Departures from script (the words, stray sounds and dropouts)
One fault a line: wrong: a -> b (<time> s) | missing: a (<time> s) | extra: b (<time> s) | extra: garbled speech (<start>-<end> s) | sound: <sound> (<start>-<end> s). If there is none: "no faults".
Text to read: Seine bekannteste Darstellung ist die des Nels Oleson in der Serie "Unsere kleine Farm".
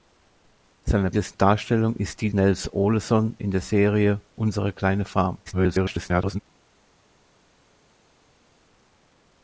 wrong: bekannteste -> des (1.1 s)
missing: des (2.3 s)
extra: garbled speech (5.5-6.4 s)